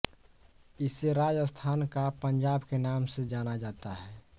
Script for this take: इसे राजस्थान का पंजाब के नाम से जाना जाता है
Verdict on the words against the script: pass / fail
pass